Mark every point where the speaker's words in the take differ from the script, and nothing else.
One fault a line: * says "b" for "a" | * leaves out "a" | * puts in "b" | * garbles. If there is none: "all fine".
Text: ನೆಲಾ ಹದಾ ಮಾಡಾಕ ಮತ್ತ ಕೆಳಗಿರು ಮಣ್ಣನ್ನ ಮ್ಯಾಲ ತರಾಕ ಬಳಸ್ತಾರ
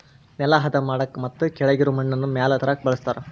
all fine